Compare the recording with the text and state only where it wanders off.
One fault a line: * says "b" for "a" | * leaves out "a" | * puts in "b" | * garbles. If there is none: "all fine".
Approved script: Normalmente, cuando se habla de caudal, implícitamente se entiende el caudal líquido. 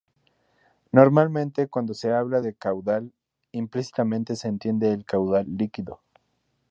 all fine